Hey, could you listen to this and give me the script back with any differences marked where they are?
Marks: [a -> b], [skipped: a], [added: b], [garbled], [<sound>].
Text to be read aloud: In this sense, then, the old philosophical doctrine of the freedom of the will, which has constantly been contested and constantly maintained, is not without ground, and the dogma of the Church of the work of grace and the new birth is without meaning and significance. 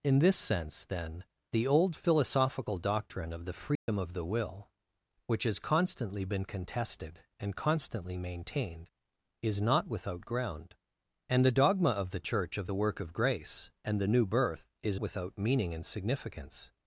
In this sense, then, the old philosophical doctrine of the freedom [dropout] of the will, which has constantly been contested and constantly maintained, is not without ground, and the dogma of the Church of the work of grace and the new birth is without meaning and significance.